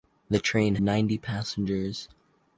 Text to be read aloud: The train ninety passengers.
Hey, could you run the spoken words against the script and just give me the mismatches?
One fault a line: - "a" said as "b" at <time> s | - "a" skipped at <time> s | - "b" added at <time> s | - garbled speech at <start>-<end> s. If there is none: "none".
none